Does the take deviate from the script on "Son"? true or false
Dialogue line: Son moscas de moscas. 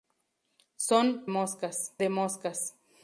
false